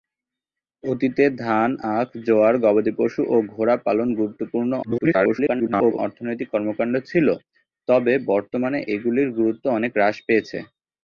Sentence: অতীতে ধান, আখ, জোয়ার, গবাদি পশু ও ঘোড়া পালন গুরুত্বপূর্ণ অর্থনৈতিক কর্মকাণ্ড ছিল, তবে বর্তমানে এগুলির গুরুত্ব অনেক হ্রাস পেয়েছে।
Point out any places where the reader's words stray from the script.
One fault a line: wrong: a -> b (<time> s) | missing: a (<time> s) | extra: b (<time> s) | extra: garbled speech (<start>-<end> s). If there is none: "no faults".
extra: garbled speech (4.8-6.0 s)